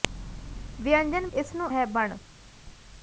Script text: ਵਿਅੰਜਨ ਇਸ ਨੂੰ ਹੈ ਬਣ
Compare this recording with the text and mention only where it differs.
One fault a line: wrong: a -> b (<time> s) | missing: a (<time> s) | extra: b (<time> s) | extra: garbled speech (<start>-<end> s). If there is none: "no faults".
no faults